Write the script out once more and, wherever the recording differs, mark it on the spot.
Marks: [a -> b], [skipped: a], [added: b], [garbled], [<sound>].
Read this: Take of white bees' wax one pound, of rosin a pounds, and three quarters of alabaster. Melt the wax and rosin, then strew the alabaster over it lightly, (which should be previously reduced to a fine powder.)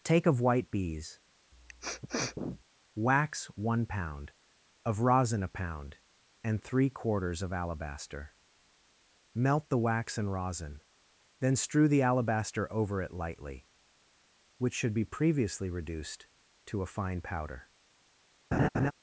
Take of white bees' [sniff] wax one pound, of rosin a [pounds, -> pound] and three quarters of alabaster. Melt the wax and rosin, then strew the alabaster over it lightly, (which should be previously reduced to a fine powder.) [laugh]